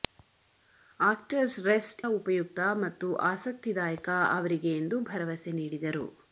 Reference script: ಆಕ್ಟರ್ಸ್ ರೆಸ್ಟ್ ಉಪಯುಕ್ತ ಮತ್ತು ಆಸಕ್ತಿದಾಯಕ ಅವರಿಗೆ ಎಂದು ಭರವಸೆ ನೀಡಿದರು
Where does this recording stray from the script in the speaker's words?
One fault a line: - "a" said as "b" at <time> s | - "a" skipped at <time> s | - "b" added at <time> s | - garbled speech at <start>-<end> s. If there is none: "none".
none